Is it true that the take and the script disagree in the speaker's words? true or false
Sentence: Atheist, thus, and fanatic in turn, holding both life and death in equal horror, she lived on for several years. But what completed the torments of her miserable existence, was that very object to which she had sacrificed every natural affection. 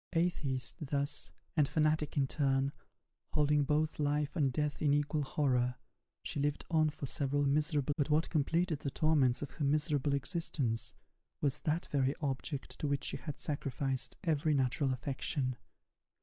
true